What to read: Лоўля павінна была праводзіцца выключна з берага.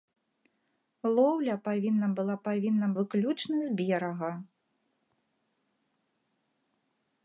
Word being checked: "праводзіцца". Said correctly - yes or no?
no